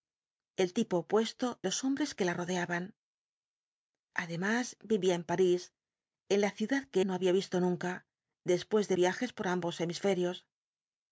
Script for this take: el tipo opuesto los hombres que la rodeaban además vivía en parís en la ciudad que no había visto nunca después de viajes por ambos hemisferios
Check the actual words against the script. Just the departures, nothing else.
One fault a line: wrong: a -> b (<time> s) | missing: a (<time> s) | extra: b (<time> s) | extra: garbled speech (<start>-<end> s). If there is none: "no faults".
no faults